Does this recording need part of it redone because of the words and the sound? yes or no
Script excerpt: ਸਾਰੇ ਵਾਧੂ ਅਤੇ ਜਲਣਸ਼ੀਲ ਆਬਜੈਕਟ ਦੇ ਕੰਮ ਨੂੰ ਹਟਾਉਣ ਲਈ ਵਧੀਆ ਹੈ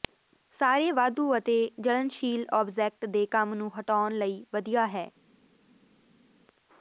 no